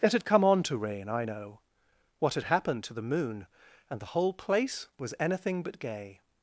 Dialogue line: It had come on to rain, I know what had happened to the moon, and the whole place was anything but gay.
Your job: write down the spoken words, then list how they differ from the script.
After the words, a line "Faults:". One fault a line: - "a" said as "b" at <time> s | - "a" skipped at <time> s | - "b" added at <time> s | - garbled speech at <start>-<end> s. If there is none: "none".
It had come on to rain, I know what had happened to the moon, and the whole place was anything but gay.
Faults:
none